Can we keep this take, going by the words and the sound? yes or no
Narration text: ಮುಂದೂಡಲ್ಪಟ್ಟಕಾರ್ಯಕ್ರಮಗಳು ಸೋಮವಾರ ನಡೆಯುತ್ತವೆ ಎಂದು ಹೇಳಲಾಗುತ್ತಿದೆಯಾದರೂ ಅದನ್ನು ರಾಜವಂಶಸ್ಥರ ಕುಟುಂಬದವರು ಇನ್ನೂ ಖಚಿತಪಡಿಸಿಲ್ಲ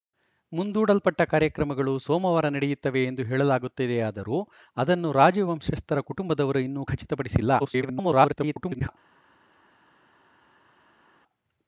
no